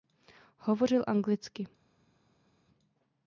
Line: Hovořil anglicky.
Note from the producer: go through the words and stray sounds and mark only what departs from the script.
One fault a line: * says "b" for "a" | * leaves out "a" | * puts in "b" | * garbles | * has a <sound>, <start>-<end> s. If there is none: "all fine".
all fine